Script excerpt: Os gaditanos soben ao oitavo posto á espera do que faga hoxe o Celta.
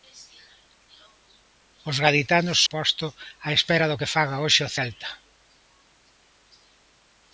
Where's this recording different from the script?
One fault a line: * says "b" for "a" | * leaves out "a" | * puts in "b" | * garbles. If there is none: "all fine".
* leaves out "soben ao oitavo"